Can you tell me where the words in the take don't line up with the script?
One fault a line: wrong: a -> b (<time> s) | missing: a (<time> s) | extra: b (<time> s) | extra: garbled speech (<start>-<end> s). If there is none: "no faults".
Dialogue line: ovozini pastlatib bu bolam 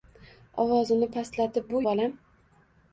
no faults